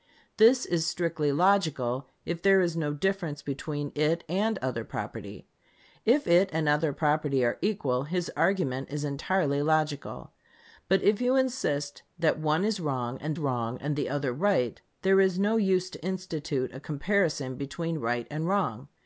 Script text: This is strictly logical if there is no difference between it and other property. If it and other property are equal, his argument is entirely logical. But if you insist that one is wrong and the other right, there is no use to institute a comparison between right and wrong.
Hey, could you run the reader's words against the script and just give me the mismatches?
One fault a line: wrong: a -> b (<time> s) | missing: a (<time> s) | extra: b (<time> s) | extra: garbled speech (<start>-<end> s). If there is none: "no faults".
extra: wrong and (13.4 s)